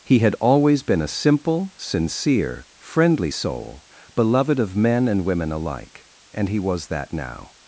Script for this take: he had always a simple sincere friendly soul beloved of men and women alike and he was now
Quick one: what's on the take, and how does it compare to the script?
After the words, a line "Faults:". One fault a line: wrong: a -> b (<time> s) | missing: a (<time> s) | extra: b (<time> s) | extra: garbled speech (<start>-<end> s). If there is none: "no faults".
he had always been a simple sincere friendly soul beloved of men and women alike and he was that now
Faults:
extra: been (0.8 s)
extra: that (6.9 s)